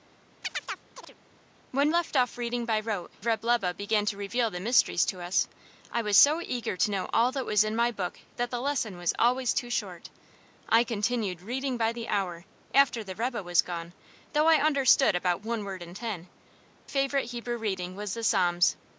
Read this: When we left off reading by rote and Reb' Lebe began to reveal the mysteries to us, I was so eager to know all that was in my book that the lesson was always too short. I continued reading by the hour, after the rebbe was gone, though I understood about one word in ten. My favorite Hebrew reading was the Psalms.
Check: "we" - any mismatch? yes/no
yes